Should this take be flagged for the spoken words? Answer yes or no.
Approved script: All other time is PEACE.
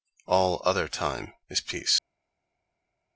no